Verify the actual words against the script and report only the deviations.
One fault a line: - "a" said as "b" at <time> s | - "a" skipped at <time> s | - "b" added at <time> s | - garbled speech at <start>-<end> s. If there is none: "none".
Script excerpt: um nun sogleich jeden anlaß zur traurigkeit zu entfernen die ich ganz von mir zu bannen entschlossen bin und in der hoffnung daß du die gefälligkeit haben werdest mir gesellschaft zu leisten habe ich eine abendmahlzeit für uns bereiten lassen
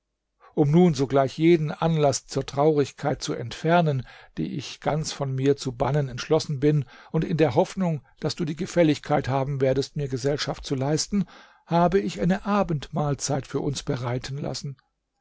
none